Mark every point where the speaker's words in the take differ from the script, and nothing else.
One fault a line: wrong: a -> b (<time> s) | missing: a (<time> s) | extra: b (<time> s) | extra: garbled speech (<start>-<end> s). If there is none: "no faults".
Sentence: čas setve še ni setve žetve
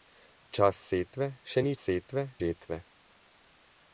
no faults